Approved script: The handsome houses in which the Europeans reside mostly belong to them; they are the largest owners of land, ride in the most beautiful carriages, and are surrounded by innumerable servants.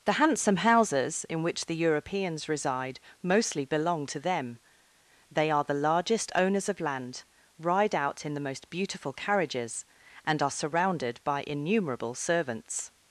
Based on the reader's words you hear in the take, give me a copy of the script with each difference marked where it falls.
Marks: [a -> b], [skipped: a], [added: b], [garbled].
The handsome houses in which the Europeans reside mostly belong to them; they are the largest owners of land, ride [added: out] in the most beautiful carriages, and are surrounded by innumerable servants.